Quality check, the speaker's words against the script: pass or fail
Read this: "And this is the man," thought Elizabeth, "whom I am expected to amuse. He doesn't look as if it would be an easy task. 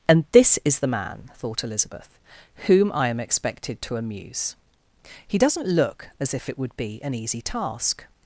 pass